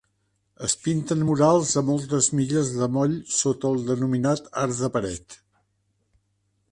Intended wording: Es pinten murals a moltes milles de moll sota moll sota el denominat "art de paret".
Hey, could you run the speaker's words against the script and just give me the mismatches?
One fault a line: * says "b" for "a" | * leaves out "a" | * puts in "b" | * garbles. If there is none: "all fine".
* leaves out "moll sota"